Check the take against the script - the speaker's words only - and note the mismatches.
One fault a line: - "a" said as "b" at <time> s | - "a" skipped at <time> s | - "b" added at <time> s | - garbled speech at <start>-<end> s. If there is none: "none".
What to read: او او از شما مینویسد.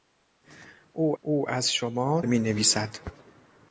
none